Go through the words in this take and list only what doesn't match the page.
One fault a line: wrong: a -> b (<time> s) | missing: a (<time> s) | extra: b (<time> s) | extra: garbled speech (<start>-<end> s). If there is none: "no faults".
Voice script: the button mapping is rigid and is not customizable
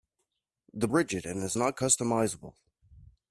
missing: button mapping is (0.9 s)